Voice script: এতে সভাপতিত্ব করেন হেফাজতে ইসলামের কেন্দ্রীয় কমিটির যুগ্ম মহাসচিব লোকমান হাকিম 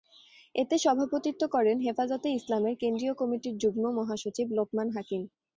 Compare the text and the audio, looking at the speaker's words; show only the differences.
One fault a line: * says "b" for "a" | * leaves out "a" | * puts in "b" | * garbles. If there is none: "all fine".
all fine